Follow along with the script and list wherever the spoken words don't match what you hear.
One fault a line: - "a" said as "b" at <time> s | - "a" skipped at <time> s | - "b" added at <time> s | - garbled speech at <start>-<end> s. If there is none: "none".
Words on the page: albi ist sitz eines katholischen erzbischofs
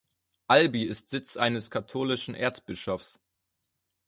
none